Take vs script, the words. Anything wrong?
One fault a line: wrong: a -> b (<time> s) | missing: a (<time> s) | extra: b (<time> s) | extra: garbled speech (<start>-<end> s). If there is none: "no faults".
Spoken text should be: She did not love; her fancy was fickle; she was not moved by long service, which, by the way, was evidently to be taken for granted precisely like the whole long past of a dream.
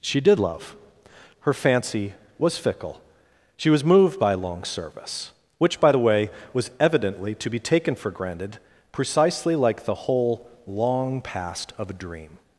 missing: not (0.4 s)
missing: not (3.8 s)